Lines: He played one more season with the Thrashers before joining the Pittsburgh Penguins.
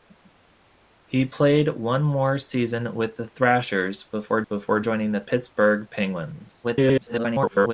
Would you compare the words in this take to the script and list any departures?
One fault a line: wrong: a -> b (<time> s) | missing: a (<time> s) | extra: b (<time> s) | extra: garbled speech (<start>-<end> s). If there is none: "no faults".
extra: before (4.4 s)
extra: garbled speech (6.6-7.7 s)